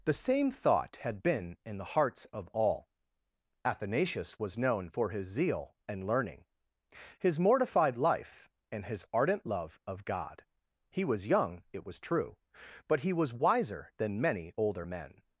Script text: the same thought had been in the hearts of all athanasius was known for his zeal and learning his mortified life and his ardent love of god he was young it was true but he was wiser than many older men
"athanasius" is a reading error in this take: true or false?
false